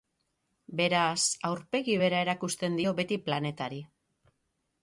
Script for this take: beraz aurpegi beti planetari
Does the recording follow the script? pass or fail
fail